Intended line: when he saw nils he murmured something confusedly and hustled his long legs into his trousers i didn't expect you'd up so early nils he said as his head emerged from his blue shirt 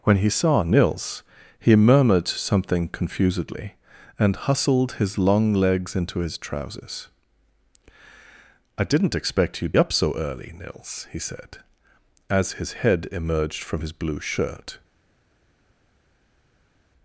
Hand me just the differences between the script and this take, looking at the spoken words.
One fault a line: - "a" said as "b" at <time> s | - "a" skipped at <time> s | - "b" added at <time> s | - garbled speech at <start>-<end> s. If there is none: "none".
none